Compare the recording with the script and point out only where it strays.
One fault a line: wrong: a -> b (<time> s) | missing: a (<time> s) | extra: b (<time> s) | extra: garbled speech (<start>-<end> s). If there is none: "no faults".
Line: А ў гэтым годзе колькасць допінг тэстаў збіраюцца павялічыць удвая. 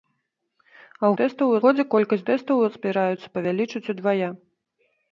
wrong: гэтым -> тэстаў (1.2 s)
missing: допінг (2.2 s)